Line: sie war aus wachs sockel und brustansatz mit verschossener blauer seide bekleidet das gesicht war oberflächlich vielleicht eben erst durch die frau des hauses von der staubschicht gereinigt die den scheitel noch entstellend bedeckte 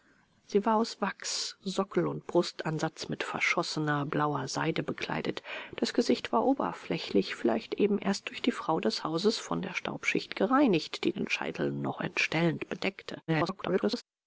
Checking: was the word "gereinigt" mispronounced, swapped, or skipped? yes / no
no